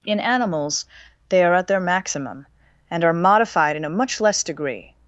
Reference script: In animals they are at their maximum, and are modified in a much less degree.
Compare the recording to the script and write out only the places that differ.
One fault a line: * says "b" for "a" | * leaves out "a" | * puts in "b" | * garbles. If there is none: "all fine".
all fine